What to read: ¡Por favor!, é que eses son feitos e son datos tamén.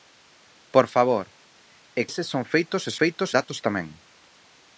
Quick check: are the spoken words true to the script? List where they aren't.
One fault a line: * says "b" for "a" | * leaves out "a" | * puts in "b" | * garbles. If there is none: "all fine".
* leaves out "que"
* says "feitos" for "son"